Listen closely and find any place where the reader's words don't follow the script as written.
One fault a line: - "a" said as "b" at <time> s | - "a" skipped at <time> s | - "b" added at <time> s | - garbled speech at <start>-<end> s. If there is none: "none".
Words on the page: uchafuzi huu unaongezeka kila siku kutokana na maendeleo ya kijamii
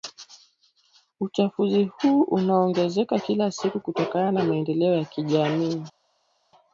none